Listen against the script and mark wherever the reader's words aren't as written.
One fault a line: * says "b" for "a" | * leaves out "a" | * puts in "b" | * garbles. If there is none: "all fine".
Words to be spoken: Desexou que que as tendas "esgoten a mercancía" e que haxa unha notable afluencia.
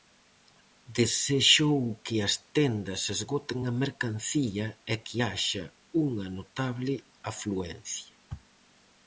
* leaves out "que"